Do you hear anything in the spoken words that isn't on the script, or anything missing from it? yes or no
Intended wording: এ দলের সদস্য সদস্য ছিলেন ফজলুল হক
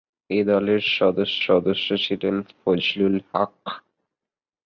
no